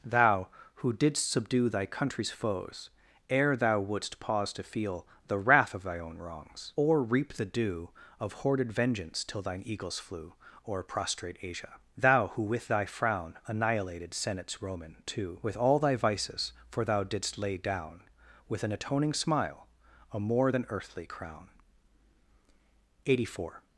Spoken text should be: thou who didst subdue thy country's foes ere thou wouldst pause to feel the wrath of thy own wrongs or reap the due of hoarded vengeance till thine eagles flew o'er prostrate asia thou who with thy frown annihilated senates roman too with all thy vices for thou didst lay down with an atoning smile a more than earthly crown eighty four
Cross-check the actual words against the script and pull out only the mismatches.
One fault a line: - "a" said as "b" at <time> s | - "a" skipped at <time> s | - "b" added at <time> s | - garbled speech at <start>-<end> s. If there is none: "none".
none